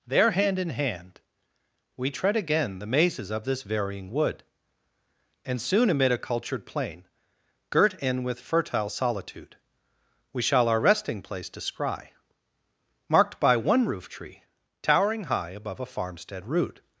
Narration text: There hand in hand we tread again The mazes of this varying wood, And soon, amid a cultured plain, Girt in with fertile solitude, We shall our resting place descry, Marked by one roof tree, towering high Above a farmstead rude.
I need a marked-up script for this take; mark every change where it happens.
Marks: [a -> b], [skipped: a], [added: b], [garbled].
There hand in hand we tread again The mazes of this varying wood, And soon, amid a cultured plain, Girt in with fertile solitude, We shall our resting place descry, Marked by one roof tree, towering high Above a farmstead rude.